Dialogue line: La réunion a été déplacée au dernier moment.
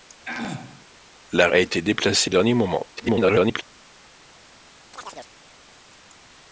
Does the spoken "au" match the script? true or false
false